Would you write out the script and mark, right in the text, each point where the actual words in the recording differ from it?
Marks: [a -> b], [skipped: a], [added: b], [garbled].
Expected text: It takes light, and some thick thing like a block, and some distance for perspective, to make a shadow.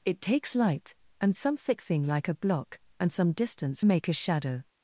It takes light, and some thick thing like a block, and some distance [skipped: for perspective, to] make a shadow.